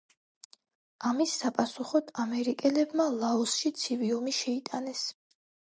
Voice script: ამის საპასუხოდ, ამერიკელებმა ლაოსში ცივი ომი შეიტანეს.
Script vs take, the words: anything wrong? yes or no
no